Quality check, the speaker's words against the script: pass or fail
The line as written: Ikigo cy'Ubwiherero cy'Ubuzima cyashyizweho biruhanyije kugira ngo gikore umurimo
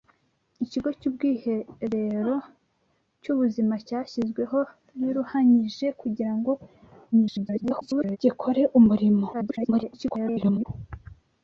fail